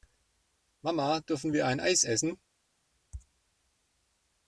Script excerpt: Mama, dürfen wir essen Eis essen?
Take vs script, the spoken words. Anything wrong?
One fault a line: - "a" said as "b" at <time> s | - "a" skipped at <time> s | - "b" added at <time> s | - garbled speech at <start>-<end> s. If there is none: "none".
- "essen" said as "ein" at 1.7 s